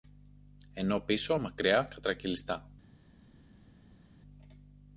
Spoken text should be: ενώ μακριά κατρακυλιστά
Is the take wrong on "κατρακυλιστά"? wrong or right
right